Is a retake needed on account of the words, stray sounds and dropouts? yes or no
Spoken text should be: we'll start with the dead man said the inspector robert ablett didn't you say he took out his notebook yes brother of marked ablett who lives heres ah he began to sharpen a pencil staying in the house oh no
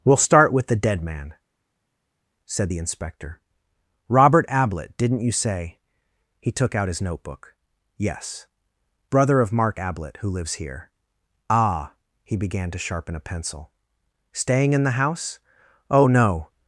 yes